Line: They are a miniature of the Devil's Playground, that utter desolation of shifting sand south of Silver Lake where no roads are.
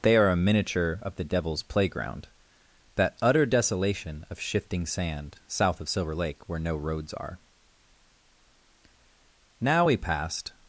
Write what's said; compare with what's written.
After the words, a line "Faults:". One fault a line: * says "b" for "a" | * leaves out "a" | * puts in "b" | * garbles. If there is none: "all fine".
They are a miniature of the Devil's Playground, that utter desolation of shifting sand south of Silver Lake where no roads are. Now we passed
Faults:
* puts in "Now we passed"